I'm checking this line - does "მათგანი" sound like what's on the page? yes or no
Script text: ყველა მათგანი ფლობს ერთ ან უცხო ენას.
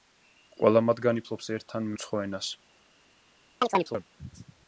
yes